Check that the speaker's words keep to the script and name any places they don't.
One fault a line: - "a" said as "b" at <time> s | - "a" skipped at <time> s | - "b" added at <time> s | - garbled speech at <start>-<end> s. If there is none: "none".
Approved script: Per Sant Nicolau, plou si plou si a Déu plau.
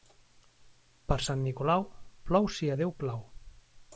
- "plou si" skipped at 2.7 s